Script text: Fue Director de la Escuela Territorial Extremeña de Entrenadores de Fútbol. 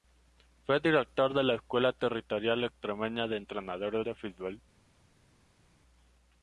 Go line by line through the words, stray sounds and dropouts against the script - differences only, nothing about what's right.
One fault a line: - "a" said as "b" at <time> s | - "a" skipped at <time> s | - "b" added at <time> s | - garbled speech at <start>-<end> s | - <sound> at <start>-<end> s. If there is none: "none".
none